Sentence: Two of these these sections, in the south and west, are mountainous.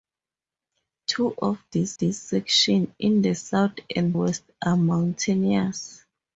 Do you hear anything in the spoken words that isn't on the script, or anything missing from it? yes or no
no